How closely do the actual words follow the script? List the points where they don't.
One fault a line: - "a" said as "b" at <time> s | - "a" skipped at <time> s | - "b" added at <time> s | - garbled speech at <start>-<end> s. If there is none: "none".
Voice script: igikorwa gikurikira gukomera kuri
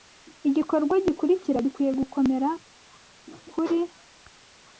- "gikwiye" added at 1.6 s